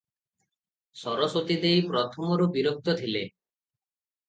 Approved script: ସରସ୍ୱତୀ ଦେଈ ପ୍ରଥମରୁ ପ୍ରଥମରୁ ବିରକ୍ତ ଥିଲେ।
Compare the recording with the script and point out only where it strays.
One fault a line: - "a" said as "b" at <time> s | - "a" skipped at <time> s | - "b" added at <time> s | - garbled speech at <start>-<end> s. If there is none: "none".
- "ପ୍ରଥମରୁ" skipped at 2.5 s